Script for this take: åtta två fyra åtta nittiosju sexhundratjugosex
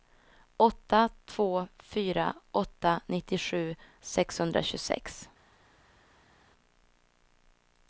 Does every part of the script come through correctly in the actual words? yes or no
yes